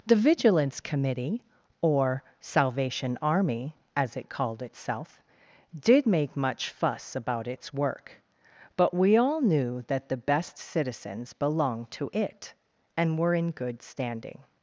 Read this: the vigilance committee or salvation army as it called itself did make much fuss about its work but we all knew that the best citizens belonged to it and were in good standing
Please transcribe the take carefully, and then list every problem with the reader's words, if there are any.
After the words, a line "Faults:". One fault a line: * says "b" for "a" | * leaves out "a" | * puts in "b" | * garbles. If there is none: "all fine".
the vigilance committee or salvation army as it called itself did make much fuss about its work but we all knew that the best citizens belonged to it and were in good standing
Faults:
all fine